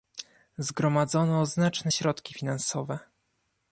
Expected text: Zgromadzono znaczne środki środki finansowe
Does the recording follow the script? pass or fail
fail